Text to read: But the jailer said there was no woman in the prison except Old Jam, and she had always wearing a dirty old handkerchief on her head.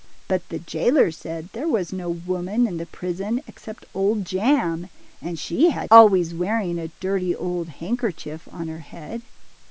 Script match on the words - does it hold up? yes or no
yes